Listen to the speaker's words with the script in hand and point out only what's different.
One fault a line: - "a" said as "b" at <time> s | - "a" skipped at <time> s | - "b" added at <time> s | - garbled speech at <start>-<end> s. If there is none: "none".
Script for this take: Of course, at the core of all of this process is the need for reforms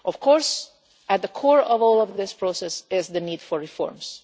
- "of" added at 2.1 s